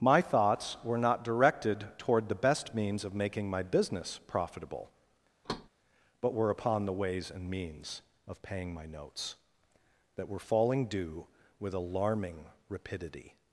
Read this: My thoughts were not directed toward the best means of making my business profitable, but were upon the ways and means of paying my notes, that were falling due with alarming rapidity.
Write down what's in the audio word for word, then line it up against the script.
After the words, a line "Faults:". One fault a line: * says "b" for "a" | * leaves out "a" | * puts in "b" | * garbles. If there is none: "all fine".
My thoughts were not directed toward the best means of making my business profitable, but were upon the ways and means of paying my notes, that were falling due with alarming rapidity.
Faults:
all fine